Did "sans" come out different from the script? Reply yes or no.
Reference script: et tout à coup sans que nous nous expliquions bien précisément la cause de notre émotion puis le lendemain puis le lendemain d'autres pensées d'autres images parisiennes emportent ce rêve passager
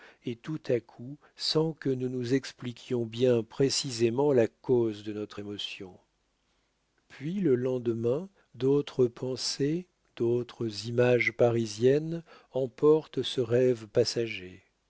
no